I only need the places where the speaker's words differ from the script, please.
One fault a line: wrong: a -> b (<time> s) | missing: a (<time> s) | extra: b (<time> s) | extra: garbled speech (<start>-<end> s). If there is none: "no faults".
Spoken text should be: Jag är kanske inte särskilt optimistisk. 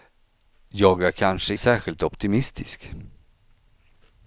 missing: inte (1.6 s)